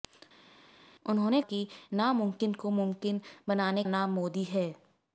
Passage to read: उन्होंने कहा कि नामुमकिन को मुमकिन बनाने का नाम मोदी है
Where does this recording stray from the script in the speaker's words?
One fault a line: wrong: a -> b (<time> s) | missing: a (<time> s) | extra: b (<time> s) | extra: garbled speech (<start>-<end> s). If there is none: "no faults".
missing: कहा (1.4 s)
missing: का (3.8 s)